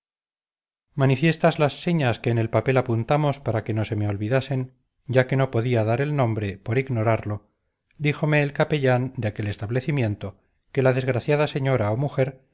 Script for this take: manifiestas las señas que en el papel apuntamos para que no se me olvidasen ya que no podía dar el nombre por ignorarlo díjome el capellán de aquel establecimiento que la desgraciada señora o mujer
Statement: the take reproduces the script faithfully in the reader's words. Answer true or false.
true